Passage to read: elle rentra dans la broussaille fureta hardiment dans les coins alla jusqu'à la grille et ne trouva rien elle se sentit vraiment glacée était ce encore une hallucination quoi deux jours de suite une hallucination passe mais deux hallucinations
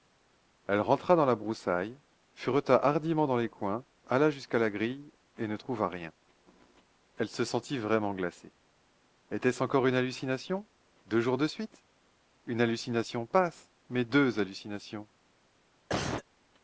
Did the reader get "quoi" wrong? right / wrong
wrong